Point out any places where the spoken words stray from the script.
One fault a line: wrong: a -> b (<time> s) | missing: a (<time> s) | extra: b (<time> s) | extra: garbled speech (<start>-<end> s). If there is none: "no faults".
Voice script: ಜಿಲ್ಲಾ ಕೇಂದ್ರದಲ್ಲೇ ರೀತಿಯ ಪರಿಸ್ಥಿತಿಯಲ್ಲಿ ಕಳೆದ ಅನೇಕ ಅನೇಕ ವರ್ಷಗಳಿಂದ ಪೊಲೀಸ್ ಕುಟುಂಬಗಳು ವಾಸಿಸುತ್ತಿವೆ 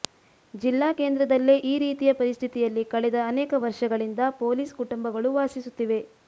extra: ಈ (1.6 s)
missing: ಅನೇಕ (3.5 s)